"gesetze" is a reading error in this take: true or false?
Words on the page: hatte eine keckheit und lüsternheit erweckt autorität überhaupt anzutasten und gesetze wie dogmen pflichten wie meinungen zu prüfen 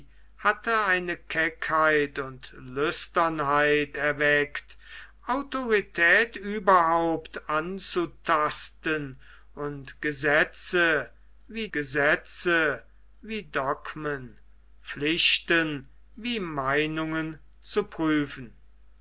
false